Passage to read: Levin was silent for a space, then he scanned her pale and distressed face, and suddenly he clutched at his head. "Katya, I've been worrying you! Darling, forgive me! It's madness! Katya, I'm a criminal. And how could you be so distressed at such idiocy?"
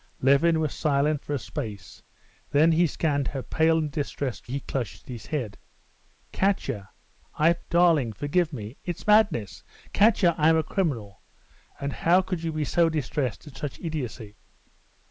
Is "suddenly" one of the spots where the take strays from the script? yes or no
yes